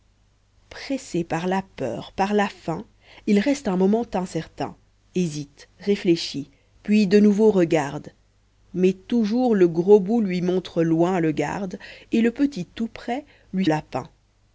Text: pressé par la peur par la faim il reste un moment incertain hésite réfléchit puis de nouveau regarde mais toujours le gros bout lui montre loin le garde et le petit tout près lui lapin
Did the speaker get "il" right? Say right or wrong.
right